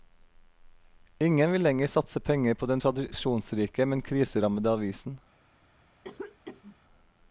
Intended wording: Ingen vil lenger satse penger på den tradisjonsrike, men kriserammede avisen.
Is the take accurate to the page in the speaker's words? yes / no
yes